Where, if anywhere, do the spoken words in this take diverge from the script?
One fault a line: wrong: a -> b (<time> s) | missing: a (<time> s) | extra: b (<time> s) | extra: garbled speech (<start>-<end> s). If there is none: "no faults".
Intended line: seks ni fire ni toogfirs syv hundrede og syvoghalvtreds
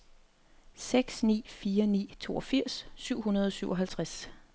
no faults